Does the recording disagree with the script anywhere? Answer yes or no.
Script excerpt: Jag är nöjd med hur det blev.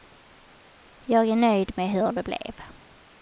no